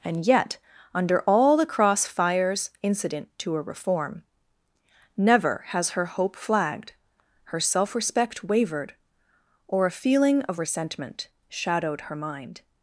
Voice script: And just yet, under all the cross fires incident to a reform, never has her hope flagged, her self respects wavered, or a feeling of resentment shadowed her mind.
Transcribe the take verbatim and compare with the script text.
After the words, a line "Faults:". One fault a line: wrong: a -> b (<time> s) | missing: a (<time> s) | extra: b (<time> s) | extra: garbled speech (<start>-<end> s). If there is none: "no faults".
And yet, under all the cross fires incident to a reform, never has her hope flagged, her self respect wavered, or a feeling of resentment shadowed her mind.
Faults:
missing: just (0.2 s)
wrong: respects -> respect (8.0 s)